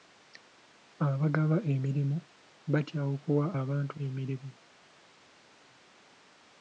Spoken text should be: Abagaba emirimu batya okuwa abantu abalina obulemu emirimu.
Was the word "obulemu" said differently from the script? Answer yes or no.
yes